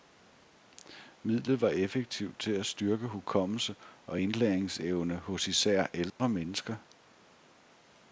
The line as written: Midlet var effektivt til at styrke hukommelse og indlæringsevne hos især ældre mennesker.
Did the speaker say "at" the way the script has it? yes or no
yes